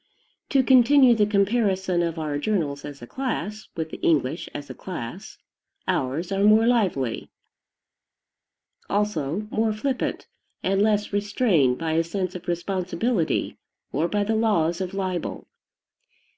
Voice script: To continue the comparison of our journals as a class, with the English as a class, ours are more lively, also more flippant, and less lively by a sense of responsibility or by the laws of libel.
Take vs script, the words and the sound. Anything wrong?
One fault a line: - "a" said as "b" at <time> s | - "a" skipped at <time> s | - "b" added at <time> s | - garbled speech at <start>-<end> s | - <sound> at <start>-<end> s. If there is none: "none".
- "lively" said as "restrained" at 11.1 s